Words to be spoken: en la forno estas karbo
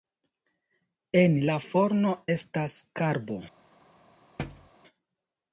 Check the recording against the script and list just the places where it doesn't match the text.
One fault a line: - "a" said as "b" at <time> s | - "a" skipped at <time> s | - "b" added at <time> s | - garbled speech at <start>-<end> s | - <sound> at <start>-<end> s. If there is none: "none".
- thud at 4.4-4.7 s